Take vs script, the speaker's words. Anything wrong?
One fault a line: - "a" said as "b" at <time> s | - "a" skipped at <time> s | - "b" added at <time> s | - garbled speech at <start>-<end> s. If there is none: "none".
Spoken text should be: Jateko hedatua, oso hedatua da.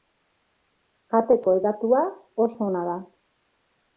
- "hedatua" said as "ona" at 2.7 s